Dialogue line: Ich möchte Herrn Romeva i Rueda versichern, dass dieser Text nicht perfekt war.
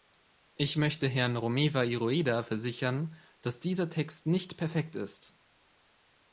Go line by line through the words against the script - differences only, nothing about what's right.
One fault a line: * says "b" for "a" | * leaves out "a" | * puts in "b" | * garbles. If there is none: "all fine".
* says "ist" for "war"